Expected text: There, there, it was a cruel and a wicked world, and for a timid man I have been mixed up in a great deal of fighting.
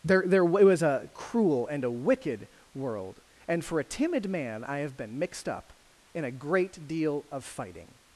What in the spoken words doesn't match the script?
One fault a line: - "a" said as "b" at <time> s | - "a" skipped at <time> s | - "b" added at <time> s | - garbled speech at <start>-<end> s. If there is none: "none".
none